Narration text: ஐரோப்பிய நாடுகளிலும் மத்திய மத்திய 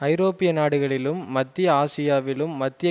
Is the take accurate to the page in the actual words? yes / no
no